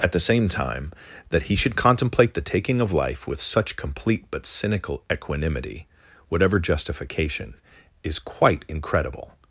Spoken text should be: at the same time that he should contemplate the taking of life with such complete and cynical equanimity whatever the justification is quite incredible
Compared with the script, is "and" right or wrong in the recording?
wrong